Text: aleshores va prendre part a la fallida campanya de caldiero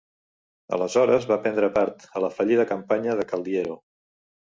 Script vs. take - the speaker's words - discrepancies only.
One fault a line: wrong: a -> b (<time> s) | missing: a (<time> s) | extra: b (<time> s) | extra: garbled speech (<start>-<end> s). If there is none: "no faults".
no faults